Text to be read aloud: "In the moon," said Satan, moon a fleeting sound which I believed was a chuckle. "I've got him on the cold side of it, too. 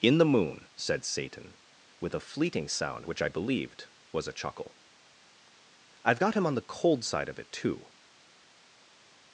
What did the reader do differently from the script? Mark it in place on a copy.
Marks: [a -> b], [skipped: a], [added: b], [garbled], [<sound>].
"In the moon," said Satan, [moon -> with] a fleeting sound which I believed was a chuckle. "I've got him on the cold side of it, too.